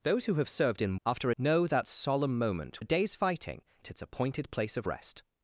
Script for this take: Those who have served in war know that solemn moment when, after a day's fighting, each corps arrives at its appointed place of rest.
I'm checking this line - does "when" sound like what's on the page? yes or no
no